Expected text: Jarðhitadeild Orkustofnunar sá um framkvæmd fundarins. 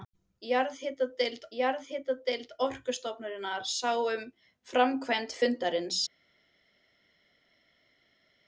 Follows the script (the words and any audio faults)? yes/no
no